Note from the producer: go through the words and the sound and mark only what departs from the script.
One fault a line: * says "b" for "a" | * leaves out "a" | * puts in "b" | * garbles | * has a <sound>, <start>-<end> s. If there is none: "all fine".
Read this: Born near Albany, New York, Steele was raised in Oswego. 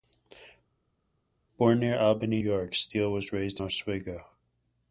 * leaves out "New"
* leaves out "in"